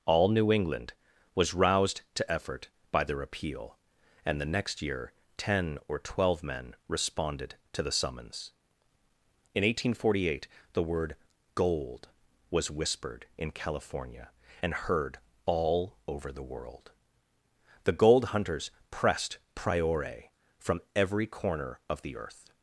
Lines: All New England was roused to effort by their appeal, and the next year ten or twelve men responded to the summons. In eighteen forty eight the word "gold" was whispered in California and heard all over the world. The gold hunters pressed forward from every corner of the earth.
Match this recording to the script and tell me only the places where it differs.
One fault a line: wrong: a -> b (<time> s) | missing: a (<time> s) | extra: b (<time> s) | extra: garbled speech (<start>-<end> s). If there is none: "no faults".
wrong: forward -> priore (19.6 s)